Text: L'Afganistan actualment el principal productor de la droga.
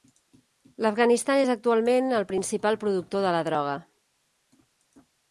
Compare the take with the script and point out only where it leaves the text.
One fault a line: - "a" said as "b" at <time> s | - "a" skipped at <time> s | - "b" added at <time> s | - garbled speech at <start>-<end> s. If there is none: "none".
- "és" added at 1.4 s